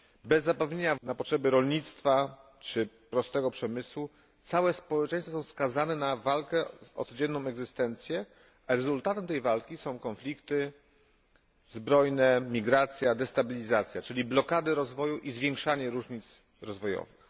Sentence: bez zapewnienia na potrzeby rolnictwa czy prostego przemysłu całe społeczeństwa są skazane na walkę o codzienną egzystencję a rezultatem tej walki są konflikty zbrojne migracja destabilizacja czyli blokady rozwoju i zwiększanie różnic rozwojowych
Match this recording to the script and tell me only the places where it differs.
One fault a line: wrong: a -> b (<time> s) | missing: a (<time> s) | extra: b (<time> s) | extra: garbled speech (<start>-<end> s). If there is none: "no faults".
no faults